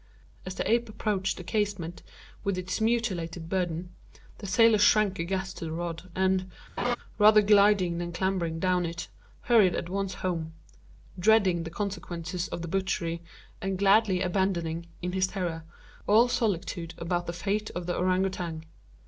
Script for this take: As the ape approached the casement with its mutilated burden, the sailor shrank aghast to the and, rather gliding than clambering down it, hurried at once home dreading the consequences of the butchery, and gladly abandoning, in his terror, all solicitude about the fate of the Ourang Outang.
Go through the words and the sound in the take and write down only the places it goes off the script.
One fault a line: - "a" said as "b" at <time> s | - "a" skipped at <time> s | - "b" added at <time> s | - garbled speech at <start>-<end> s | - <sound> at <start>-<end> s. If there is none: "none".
- "rod" added at 5.7 s
- laugh at 6.8-7.0 s